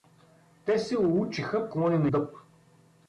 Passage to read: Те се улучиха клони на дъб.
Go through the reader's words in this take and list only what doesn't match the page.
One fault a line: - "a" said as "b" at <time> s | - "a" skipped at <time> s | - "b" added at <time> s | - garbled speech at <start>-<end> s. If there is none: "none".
none